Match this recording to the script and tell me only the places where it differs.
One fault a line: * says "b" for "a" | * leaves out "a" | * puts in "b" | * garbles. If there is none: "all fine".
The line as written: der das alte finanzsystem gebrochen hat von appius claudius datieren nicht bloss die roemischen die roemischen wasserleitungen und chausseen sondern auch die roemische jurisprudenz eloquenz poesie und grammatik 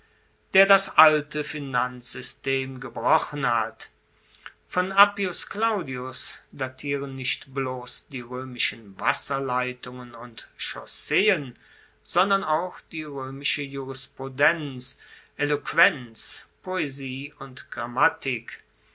* leaves out "die roemischen"